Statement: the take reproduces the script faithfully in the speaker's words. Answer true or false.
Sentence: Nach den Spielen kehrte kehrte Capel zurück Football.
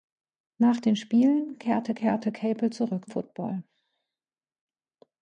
true